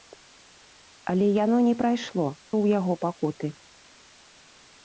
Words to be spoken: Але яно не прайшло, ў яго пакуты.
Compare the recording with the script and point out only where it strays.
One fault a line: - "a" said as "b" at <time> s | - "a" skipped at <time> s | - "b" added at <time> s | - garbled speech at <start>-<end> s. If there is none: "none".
none